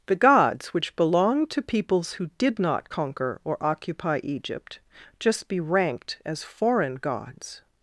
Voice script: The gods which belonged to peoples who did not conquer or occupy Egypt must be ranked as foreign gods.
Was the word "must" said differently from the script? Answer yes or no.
yes